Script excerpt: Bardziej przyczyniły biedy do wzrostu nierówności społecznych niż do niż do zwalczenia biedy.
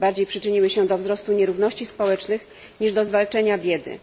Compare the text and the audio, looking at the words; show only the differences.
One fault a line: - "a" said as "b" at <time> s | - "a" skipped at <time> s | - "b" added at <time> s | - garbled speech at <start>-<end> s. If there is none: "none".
- "biedy" said as "się" at 0.7 s
- "niż do" skipped at 3.0 s